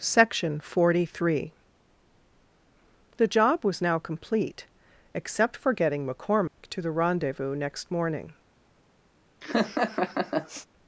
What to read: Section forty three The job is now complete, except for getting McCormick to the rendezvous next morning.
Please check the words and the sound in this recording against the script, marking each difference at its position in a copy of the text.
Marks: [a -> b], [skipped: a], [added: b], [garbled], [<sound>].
Section forty three The job [is -> was] now complete, except for getting McCormick [dropout] to the rendezvous next morning. [laugh]